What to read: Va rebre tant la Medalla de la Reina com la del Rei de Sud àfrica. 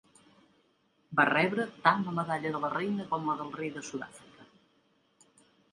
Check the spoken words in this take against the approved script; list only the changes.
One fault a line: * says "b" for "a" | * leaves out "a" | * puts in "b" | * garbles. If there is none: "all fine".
all fine